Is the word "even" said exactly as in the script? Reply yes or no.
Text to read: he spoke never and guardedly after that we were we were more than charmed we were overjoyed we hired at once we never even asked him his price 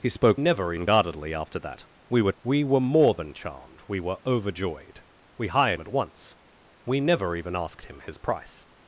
yes